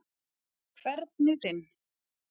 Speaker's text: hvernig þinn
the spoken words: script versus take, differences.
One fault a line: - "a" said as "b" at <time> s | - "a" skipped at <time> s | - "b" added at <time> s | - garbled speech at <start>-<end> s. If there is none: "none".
none